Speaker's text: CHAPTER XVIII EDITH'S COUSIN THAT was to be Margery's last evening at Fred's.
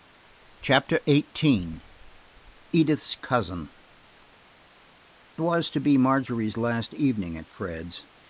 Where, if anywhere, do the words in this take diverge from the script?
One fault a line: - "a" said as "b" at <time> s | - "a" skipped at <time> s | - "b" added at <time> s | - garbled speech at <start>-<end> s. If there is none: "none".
- "THAT" skipped at 3.7 s